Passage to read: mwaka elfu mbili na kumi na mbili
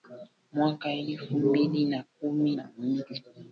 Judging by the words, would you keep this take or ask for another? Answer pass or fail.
pass